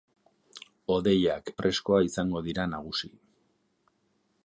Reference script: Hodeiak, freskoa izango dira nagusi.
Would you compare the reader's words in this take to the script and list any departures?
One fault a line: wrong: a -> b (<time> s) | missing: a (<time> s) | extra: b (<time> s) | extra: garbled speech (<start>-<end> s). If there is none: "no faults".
no faults